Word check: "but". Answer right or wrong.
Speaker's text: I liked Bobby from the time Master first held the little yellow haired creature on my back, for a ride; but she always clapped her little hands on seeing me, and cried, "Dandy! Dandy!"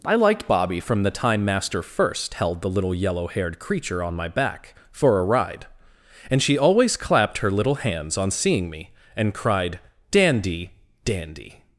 wrong